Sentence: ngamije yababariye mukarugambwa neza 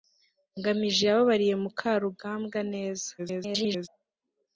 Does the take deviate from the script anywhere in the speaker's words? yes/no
yes